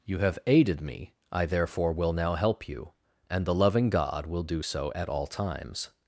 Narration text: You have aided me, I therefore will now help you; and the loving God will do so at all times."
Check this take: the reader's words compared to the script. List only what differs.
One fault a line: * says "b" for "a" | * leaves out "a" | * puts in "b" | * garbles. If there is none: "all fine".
all fine